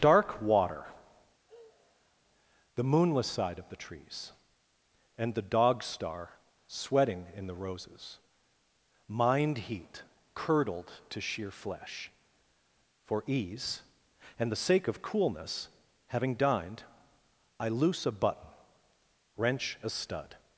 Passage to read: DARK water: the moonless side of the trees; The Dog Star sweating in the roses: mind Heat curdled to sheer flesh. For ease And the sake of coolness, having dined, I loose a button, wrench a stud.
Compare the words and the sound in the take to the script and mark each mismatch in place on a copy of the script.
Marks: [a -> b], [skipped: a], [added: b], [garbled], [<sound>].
DARK water: [sigh] the moonless side of the trees; [added: and] The Dog Star sweating in the roses: mind Heat curdled to sheer flesh. For ease And the sake of coolness, having dined, I loose a button, wrench a stud.